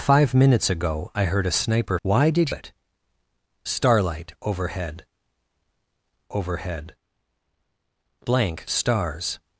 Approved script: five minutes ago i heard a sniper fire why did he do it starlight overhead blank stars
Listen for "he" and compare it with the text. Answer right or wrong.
wrong